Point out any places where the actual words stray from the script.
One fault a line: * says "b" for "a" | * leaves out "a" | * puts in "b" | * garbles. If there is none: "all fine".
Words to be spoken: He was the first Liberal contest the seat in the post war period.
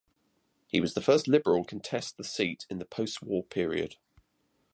all fine